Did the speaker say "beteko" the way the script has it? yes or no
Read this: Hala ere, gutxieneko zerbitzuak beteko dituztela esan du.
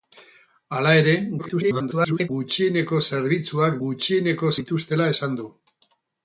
no